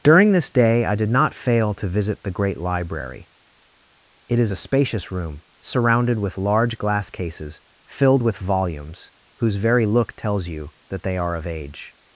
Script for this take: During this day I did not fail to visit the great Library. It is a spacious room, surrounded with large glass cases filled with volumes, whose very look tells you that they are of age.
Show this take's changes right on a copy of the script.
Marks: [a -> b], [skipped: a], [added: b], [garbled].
During this day I did not fail to visit the great Library. It is a spacious room, surrounded with large glass cases filled with volumes, whose very look tells you that they are of age.